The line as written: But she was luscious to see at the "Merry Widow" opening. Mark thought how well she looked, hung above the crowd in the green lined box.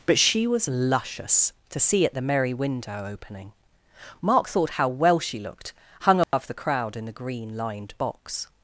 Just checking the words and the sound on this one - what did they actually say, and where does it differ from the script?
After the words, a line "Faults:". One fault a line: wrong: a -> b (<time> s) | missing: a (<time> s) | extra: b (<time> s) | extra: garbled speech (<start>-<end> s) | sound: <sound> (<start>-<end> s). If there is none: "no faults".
But she was luscious to see at the "Merry Window" opening. Mark thought how well she looked, hung above the crowd in the green lined box.
Faults:
wrong: Widow -> Window (2.5 s)
sound: dropout (6.2-6.3 s)